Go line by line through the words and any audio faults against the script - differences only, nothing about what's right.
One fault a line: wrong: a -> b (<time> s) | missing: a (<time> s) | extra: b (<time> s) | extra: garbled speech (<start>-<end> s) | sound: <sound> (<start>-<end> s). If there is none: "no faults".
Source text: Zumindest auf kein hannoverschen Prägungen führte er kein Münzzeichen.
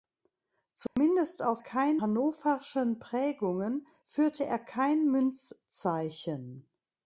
sound: dropout (0.9-1.0 s)